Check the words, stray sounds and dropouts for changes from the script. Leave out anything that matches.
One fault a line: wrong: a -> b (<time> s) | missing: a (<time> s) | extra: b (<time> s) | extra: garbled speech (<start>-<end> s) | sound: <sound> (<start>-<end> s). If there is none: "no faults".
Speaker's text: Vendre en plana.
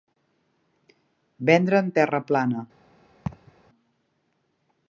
extra: terra (2.0 s)
sound: laugh (3.3-3.5 s)